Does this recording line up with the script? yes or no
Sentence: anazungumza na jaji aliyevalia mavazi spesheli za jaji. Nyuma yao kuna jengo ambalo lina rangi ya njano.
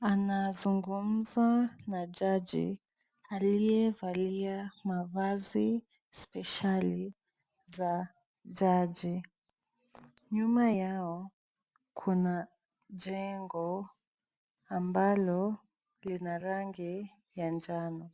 yes